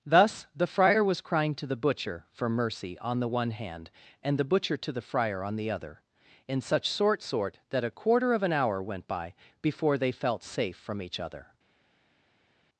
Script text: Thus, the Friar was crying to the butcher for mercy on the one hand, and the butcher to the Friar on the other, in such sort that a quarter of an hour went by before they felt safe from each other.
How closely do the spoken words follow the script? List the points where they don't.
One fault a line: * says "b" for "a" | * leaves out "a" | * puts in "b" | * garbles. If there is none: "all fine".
* puts in "sort"